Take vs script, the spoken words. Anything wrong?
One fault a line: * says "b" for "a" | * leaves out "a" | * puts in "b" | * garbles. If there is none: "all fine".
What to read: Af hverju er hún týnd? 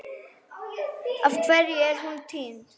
all fine